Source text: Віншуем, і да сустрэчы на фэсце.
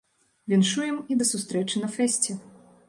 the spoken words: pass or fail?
pass